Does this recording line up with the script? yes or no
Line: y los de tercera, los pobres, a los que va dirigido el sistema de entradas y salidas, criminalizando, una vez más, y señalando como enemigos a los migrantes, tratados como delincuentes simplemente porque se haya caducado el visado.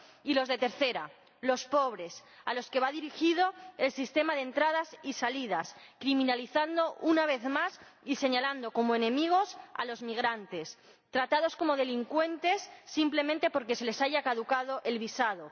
no